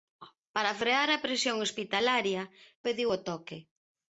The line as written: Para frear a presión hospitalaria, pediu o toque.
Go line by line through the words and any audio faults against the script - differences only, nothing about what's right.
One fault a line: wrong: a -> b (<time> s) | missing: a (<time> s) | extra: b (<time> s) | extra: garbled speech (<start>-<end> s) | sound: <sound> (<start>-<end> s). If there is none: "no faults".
no faults